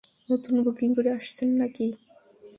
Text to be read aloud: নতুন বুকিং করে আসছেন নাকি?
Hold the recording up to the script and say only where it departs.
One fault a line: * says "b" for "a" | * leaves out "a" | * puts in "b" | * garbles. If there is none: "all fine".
all fine